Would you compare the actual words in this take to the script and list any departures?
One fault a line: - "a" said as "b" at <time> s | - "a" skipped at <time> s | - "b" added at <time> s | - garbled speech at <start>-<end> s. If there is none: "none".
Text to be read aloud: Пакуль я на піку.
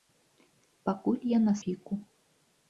none